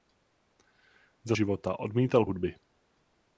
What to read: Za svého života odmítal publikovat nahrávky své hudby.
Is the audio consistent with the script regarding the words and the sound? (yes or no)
no